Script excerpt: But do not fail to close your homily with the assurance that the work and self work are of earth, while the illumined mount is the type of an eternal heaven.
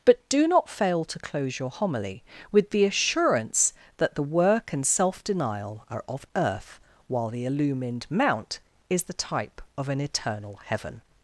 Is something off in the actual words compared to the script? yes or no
yes